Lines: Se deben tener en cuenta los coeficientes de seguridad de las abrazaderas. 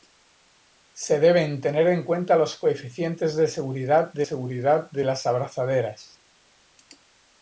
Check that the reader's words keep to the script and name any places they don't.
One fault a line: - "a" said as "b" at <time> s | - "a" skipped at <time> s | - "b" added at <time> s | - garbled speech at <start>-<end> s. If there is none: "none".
- "seguridad de" added at 4.2 s